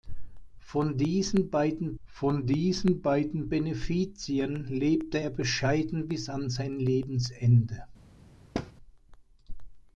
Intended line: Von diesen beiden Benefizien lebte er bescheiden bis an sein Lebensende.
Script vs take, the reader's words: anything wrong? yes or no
yes